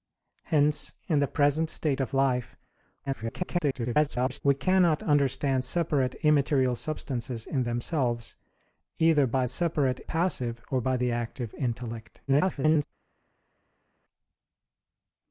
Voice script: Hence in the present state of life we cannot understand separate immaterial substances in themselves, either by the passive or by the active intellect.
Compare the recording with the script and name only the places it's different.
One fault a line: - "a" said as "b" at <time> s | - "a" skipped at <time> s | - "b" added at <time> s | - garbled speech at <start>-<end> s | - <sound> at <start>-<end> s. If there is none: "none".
- garbled speech at 3.1-4.4 s
- "the" said as "separate" at 9.5 s
- garbled speech at 12.3-12.9 s